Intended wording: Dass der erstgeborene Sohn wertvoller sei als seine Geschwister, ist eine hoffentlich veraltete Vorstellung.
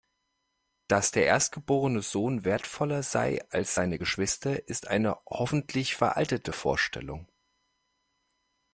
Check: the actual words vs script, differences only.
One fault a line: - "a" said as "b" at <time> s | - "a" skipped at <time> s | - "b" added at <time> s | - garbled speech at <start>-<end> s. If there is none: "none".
none